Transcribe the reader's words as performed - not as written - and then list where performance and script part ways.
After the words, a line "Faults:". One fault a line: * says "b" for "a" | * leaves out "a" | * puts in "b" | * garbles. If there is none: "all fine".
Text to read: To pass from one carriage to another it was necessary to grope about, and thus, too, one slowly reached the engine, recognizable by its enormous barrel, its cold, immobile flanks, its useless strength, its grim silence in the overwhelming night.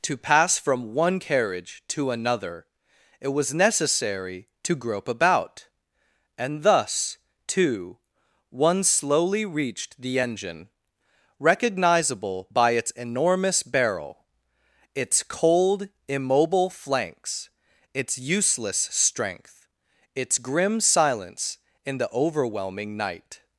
To pass from one carriage to another it was necessary to grope about, and thus, too, one slowly reached the engine, recognizable by its enormous barrel, its cold, immobile flanks, its useless strength, its grim silence in the overwhelming night.
Faults:
all fine